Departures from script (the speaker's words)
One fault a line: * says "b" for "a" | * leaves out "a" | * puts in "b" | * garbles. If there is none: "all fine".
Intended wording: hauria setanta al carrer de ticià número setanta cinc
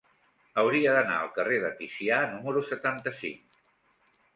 * says "d'anar" for "setanta"